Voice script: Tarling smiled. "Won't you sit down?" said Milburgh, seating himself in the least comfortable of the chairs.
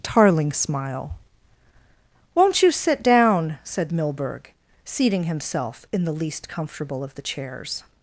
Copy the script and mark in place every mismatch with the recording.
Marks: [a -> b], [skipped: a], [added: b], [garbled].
Tarling [smiled. -> smile] "Won't you sit down?" said Milburgh, seating himself in the least comfortable of the chairs.